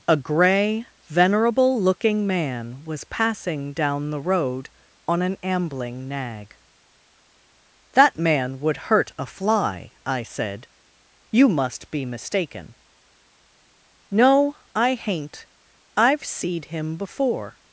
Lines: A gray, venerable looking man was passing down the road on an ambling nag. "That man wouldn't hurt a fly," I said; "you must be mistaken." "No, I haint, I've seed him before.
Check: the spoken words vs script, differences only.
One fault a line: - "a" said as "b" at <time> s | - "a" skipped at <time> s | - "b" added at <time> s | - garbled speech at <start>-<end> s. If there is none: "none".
- "wouldn't" said as "would" at 8.6 s